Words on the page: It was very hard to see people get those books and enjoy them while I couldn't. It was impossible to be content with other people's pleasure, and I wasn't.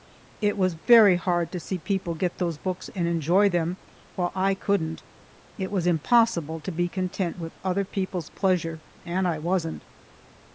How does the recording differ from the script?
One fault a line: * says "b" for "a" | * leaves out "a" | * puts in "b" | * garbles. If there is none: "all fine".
all fine